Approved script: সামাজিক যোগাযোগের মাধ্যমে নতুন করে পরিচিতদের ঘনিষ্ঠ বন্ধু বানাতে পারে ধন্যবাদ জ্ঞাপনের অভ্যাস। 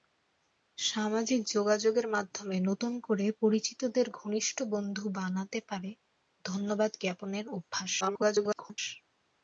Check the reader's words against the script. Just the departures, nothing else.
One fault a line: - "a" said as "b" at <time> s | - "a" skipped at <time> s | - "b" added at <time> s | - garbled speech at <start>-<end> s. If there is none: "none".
- garbled speech at 8.0-8.8 s